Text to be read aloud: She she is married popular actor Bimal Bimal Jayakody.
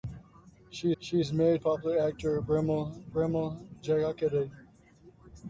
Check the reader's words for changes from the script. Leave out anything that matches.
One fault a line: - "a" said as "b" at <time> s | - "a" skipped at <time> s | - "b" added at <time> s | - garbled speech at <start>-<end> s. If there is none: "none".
none